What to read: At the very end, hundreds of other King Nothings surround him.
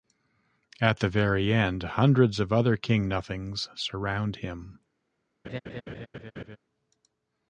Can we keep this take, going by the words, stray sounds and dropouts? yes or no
no